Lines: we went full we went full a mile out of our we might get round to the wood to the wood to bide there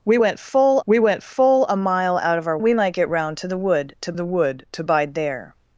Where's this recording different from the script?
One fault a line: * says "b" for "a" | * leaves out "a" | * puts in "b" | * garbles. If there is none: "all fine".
all fine